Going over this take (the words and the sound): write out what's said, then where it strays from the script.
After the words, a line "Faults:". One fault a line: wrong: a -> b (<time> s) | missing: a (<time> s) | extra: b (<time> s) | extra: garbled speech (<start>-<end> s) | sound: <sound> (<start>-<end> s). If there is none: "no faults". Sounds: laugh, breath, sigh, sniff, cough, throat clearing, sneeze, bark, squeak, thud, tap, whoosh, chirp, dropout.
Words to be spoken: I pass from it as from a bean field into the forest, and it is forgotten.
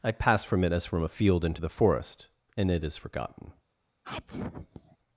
I pass from it as from a field into the forest, and it is forgotten.
Faults:
missing: bean (1.1 s)
sound: sneeze (4.0-5.0 s)